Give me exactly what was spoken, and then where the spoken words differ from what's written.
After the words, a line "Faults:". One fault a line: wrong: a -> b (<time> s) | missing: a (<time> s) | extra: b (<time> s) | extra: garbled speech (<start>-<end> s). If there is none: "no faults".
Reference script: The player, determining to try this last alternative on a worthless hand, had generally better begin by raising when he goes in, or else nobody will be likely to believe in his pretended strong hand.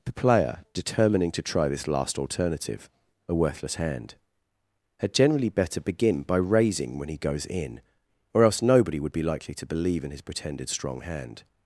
The player, determining to try this last alternative a worthless hand, had generally better begin by raising when he goes in, or else nobody would be likely to believe in his pretended strong hand.
Faults:
missing: on (2.9 s)
wrong: will -> would (9.0 s)